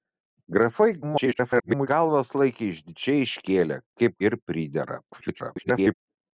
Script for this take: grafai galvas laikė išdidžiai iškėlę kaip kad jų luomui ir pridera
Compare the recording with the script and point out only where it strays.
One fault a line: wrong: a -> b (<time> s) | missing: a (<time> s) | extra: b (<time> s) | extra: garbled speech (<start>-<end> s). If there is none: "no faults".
extra: garbled speech (1.0-1.9 s)
missing: kad jų luomui (4.2 s)
extra: garbled speech (5.1-5.9 s)